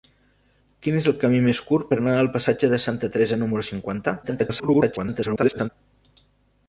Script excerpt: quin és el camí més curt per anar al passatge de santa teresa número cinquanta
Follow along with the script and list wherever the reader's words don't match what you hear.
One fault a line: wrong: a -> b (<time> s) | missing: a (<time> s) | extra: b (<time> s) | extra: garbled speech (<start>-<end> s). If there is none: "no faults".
extra: garbled speech (4.2-5.7 s)